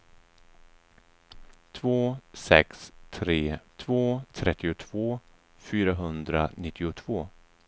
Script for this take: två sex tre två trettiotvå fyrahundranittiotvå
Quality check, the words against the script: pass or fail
pass